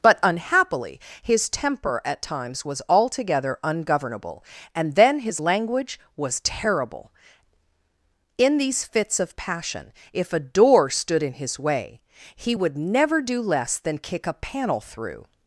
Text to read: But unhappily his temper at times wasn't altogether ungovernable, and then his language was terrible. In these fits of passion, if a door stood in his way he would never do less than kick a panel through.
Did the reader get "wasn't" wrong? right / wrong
wrong